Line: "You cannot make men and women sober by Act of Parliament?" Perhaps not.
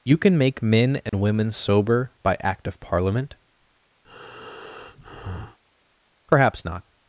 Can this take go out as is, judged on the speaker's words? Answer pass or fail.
fail